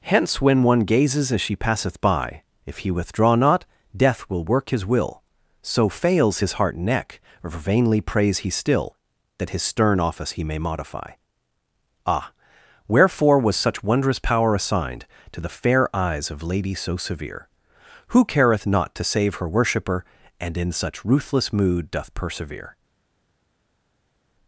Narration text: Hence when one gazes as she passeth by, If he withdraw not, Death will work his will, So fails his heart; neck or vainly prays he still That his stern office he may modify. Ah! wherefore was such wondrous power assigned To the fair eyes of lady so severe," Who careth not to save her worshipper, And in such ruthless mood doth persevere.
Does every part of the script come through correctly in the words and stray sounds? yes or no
yes